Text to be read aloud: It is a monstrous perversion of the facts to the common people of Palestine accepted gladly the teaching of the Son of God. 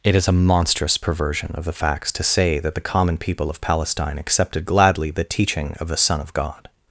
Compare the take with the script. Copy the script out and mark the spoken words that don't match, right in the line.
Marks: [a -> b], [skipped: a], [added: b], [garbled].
It is a monstrous perversion of the facts to [added: say that] the common people of Palestine accepted gladly the teaching of the Son of God.